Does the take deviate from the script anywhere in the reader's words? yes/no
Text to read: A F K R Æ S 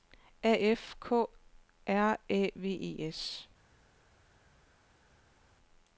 yes